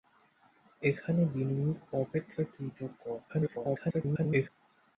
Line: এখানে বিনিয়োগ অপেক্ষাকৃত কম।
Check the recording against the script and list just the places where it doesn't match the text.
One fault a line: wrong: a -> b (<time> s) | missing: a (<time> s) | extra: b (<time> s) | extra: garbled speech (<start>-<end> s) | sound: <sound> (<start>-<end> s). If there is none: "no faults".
extra: garbled speech (3.3-4.5 s)